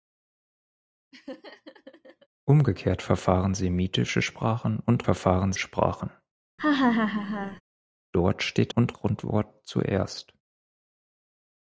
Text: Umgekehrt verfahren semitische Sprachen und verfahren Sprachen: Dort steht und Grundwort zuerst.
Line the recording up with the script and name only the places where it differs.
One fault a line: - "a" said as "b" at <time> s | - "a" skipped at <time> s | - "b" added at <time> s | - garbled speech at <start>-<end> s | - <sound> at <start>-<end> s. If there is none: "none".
- laugh at 1.1-2.3 s
- laugh at 6.6-7.6 s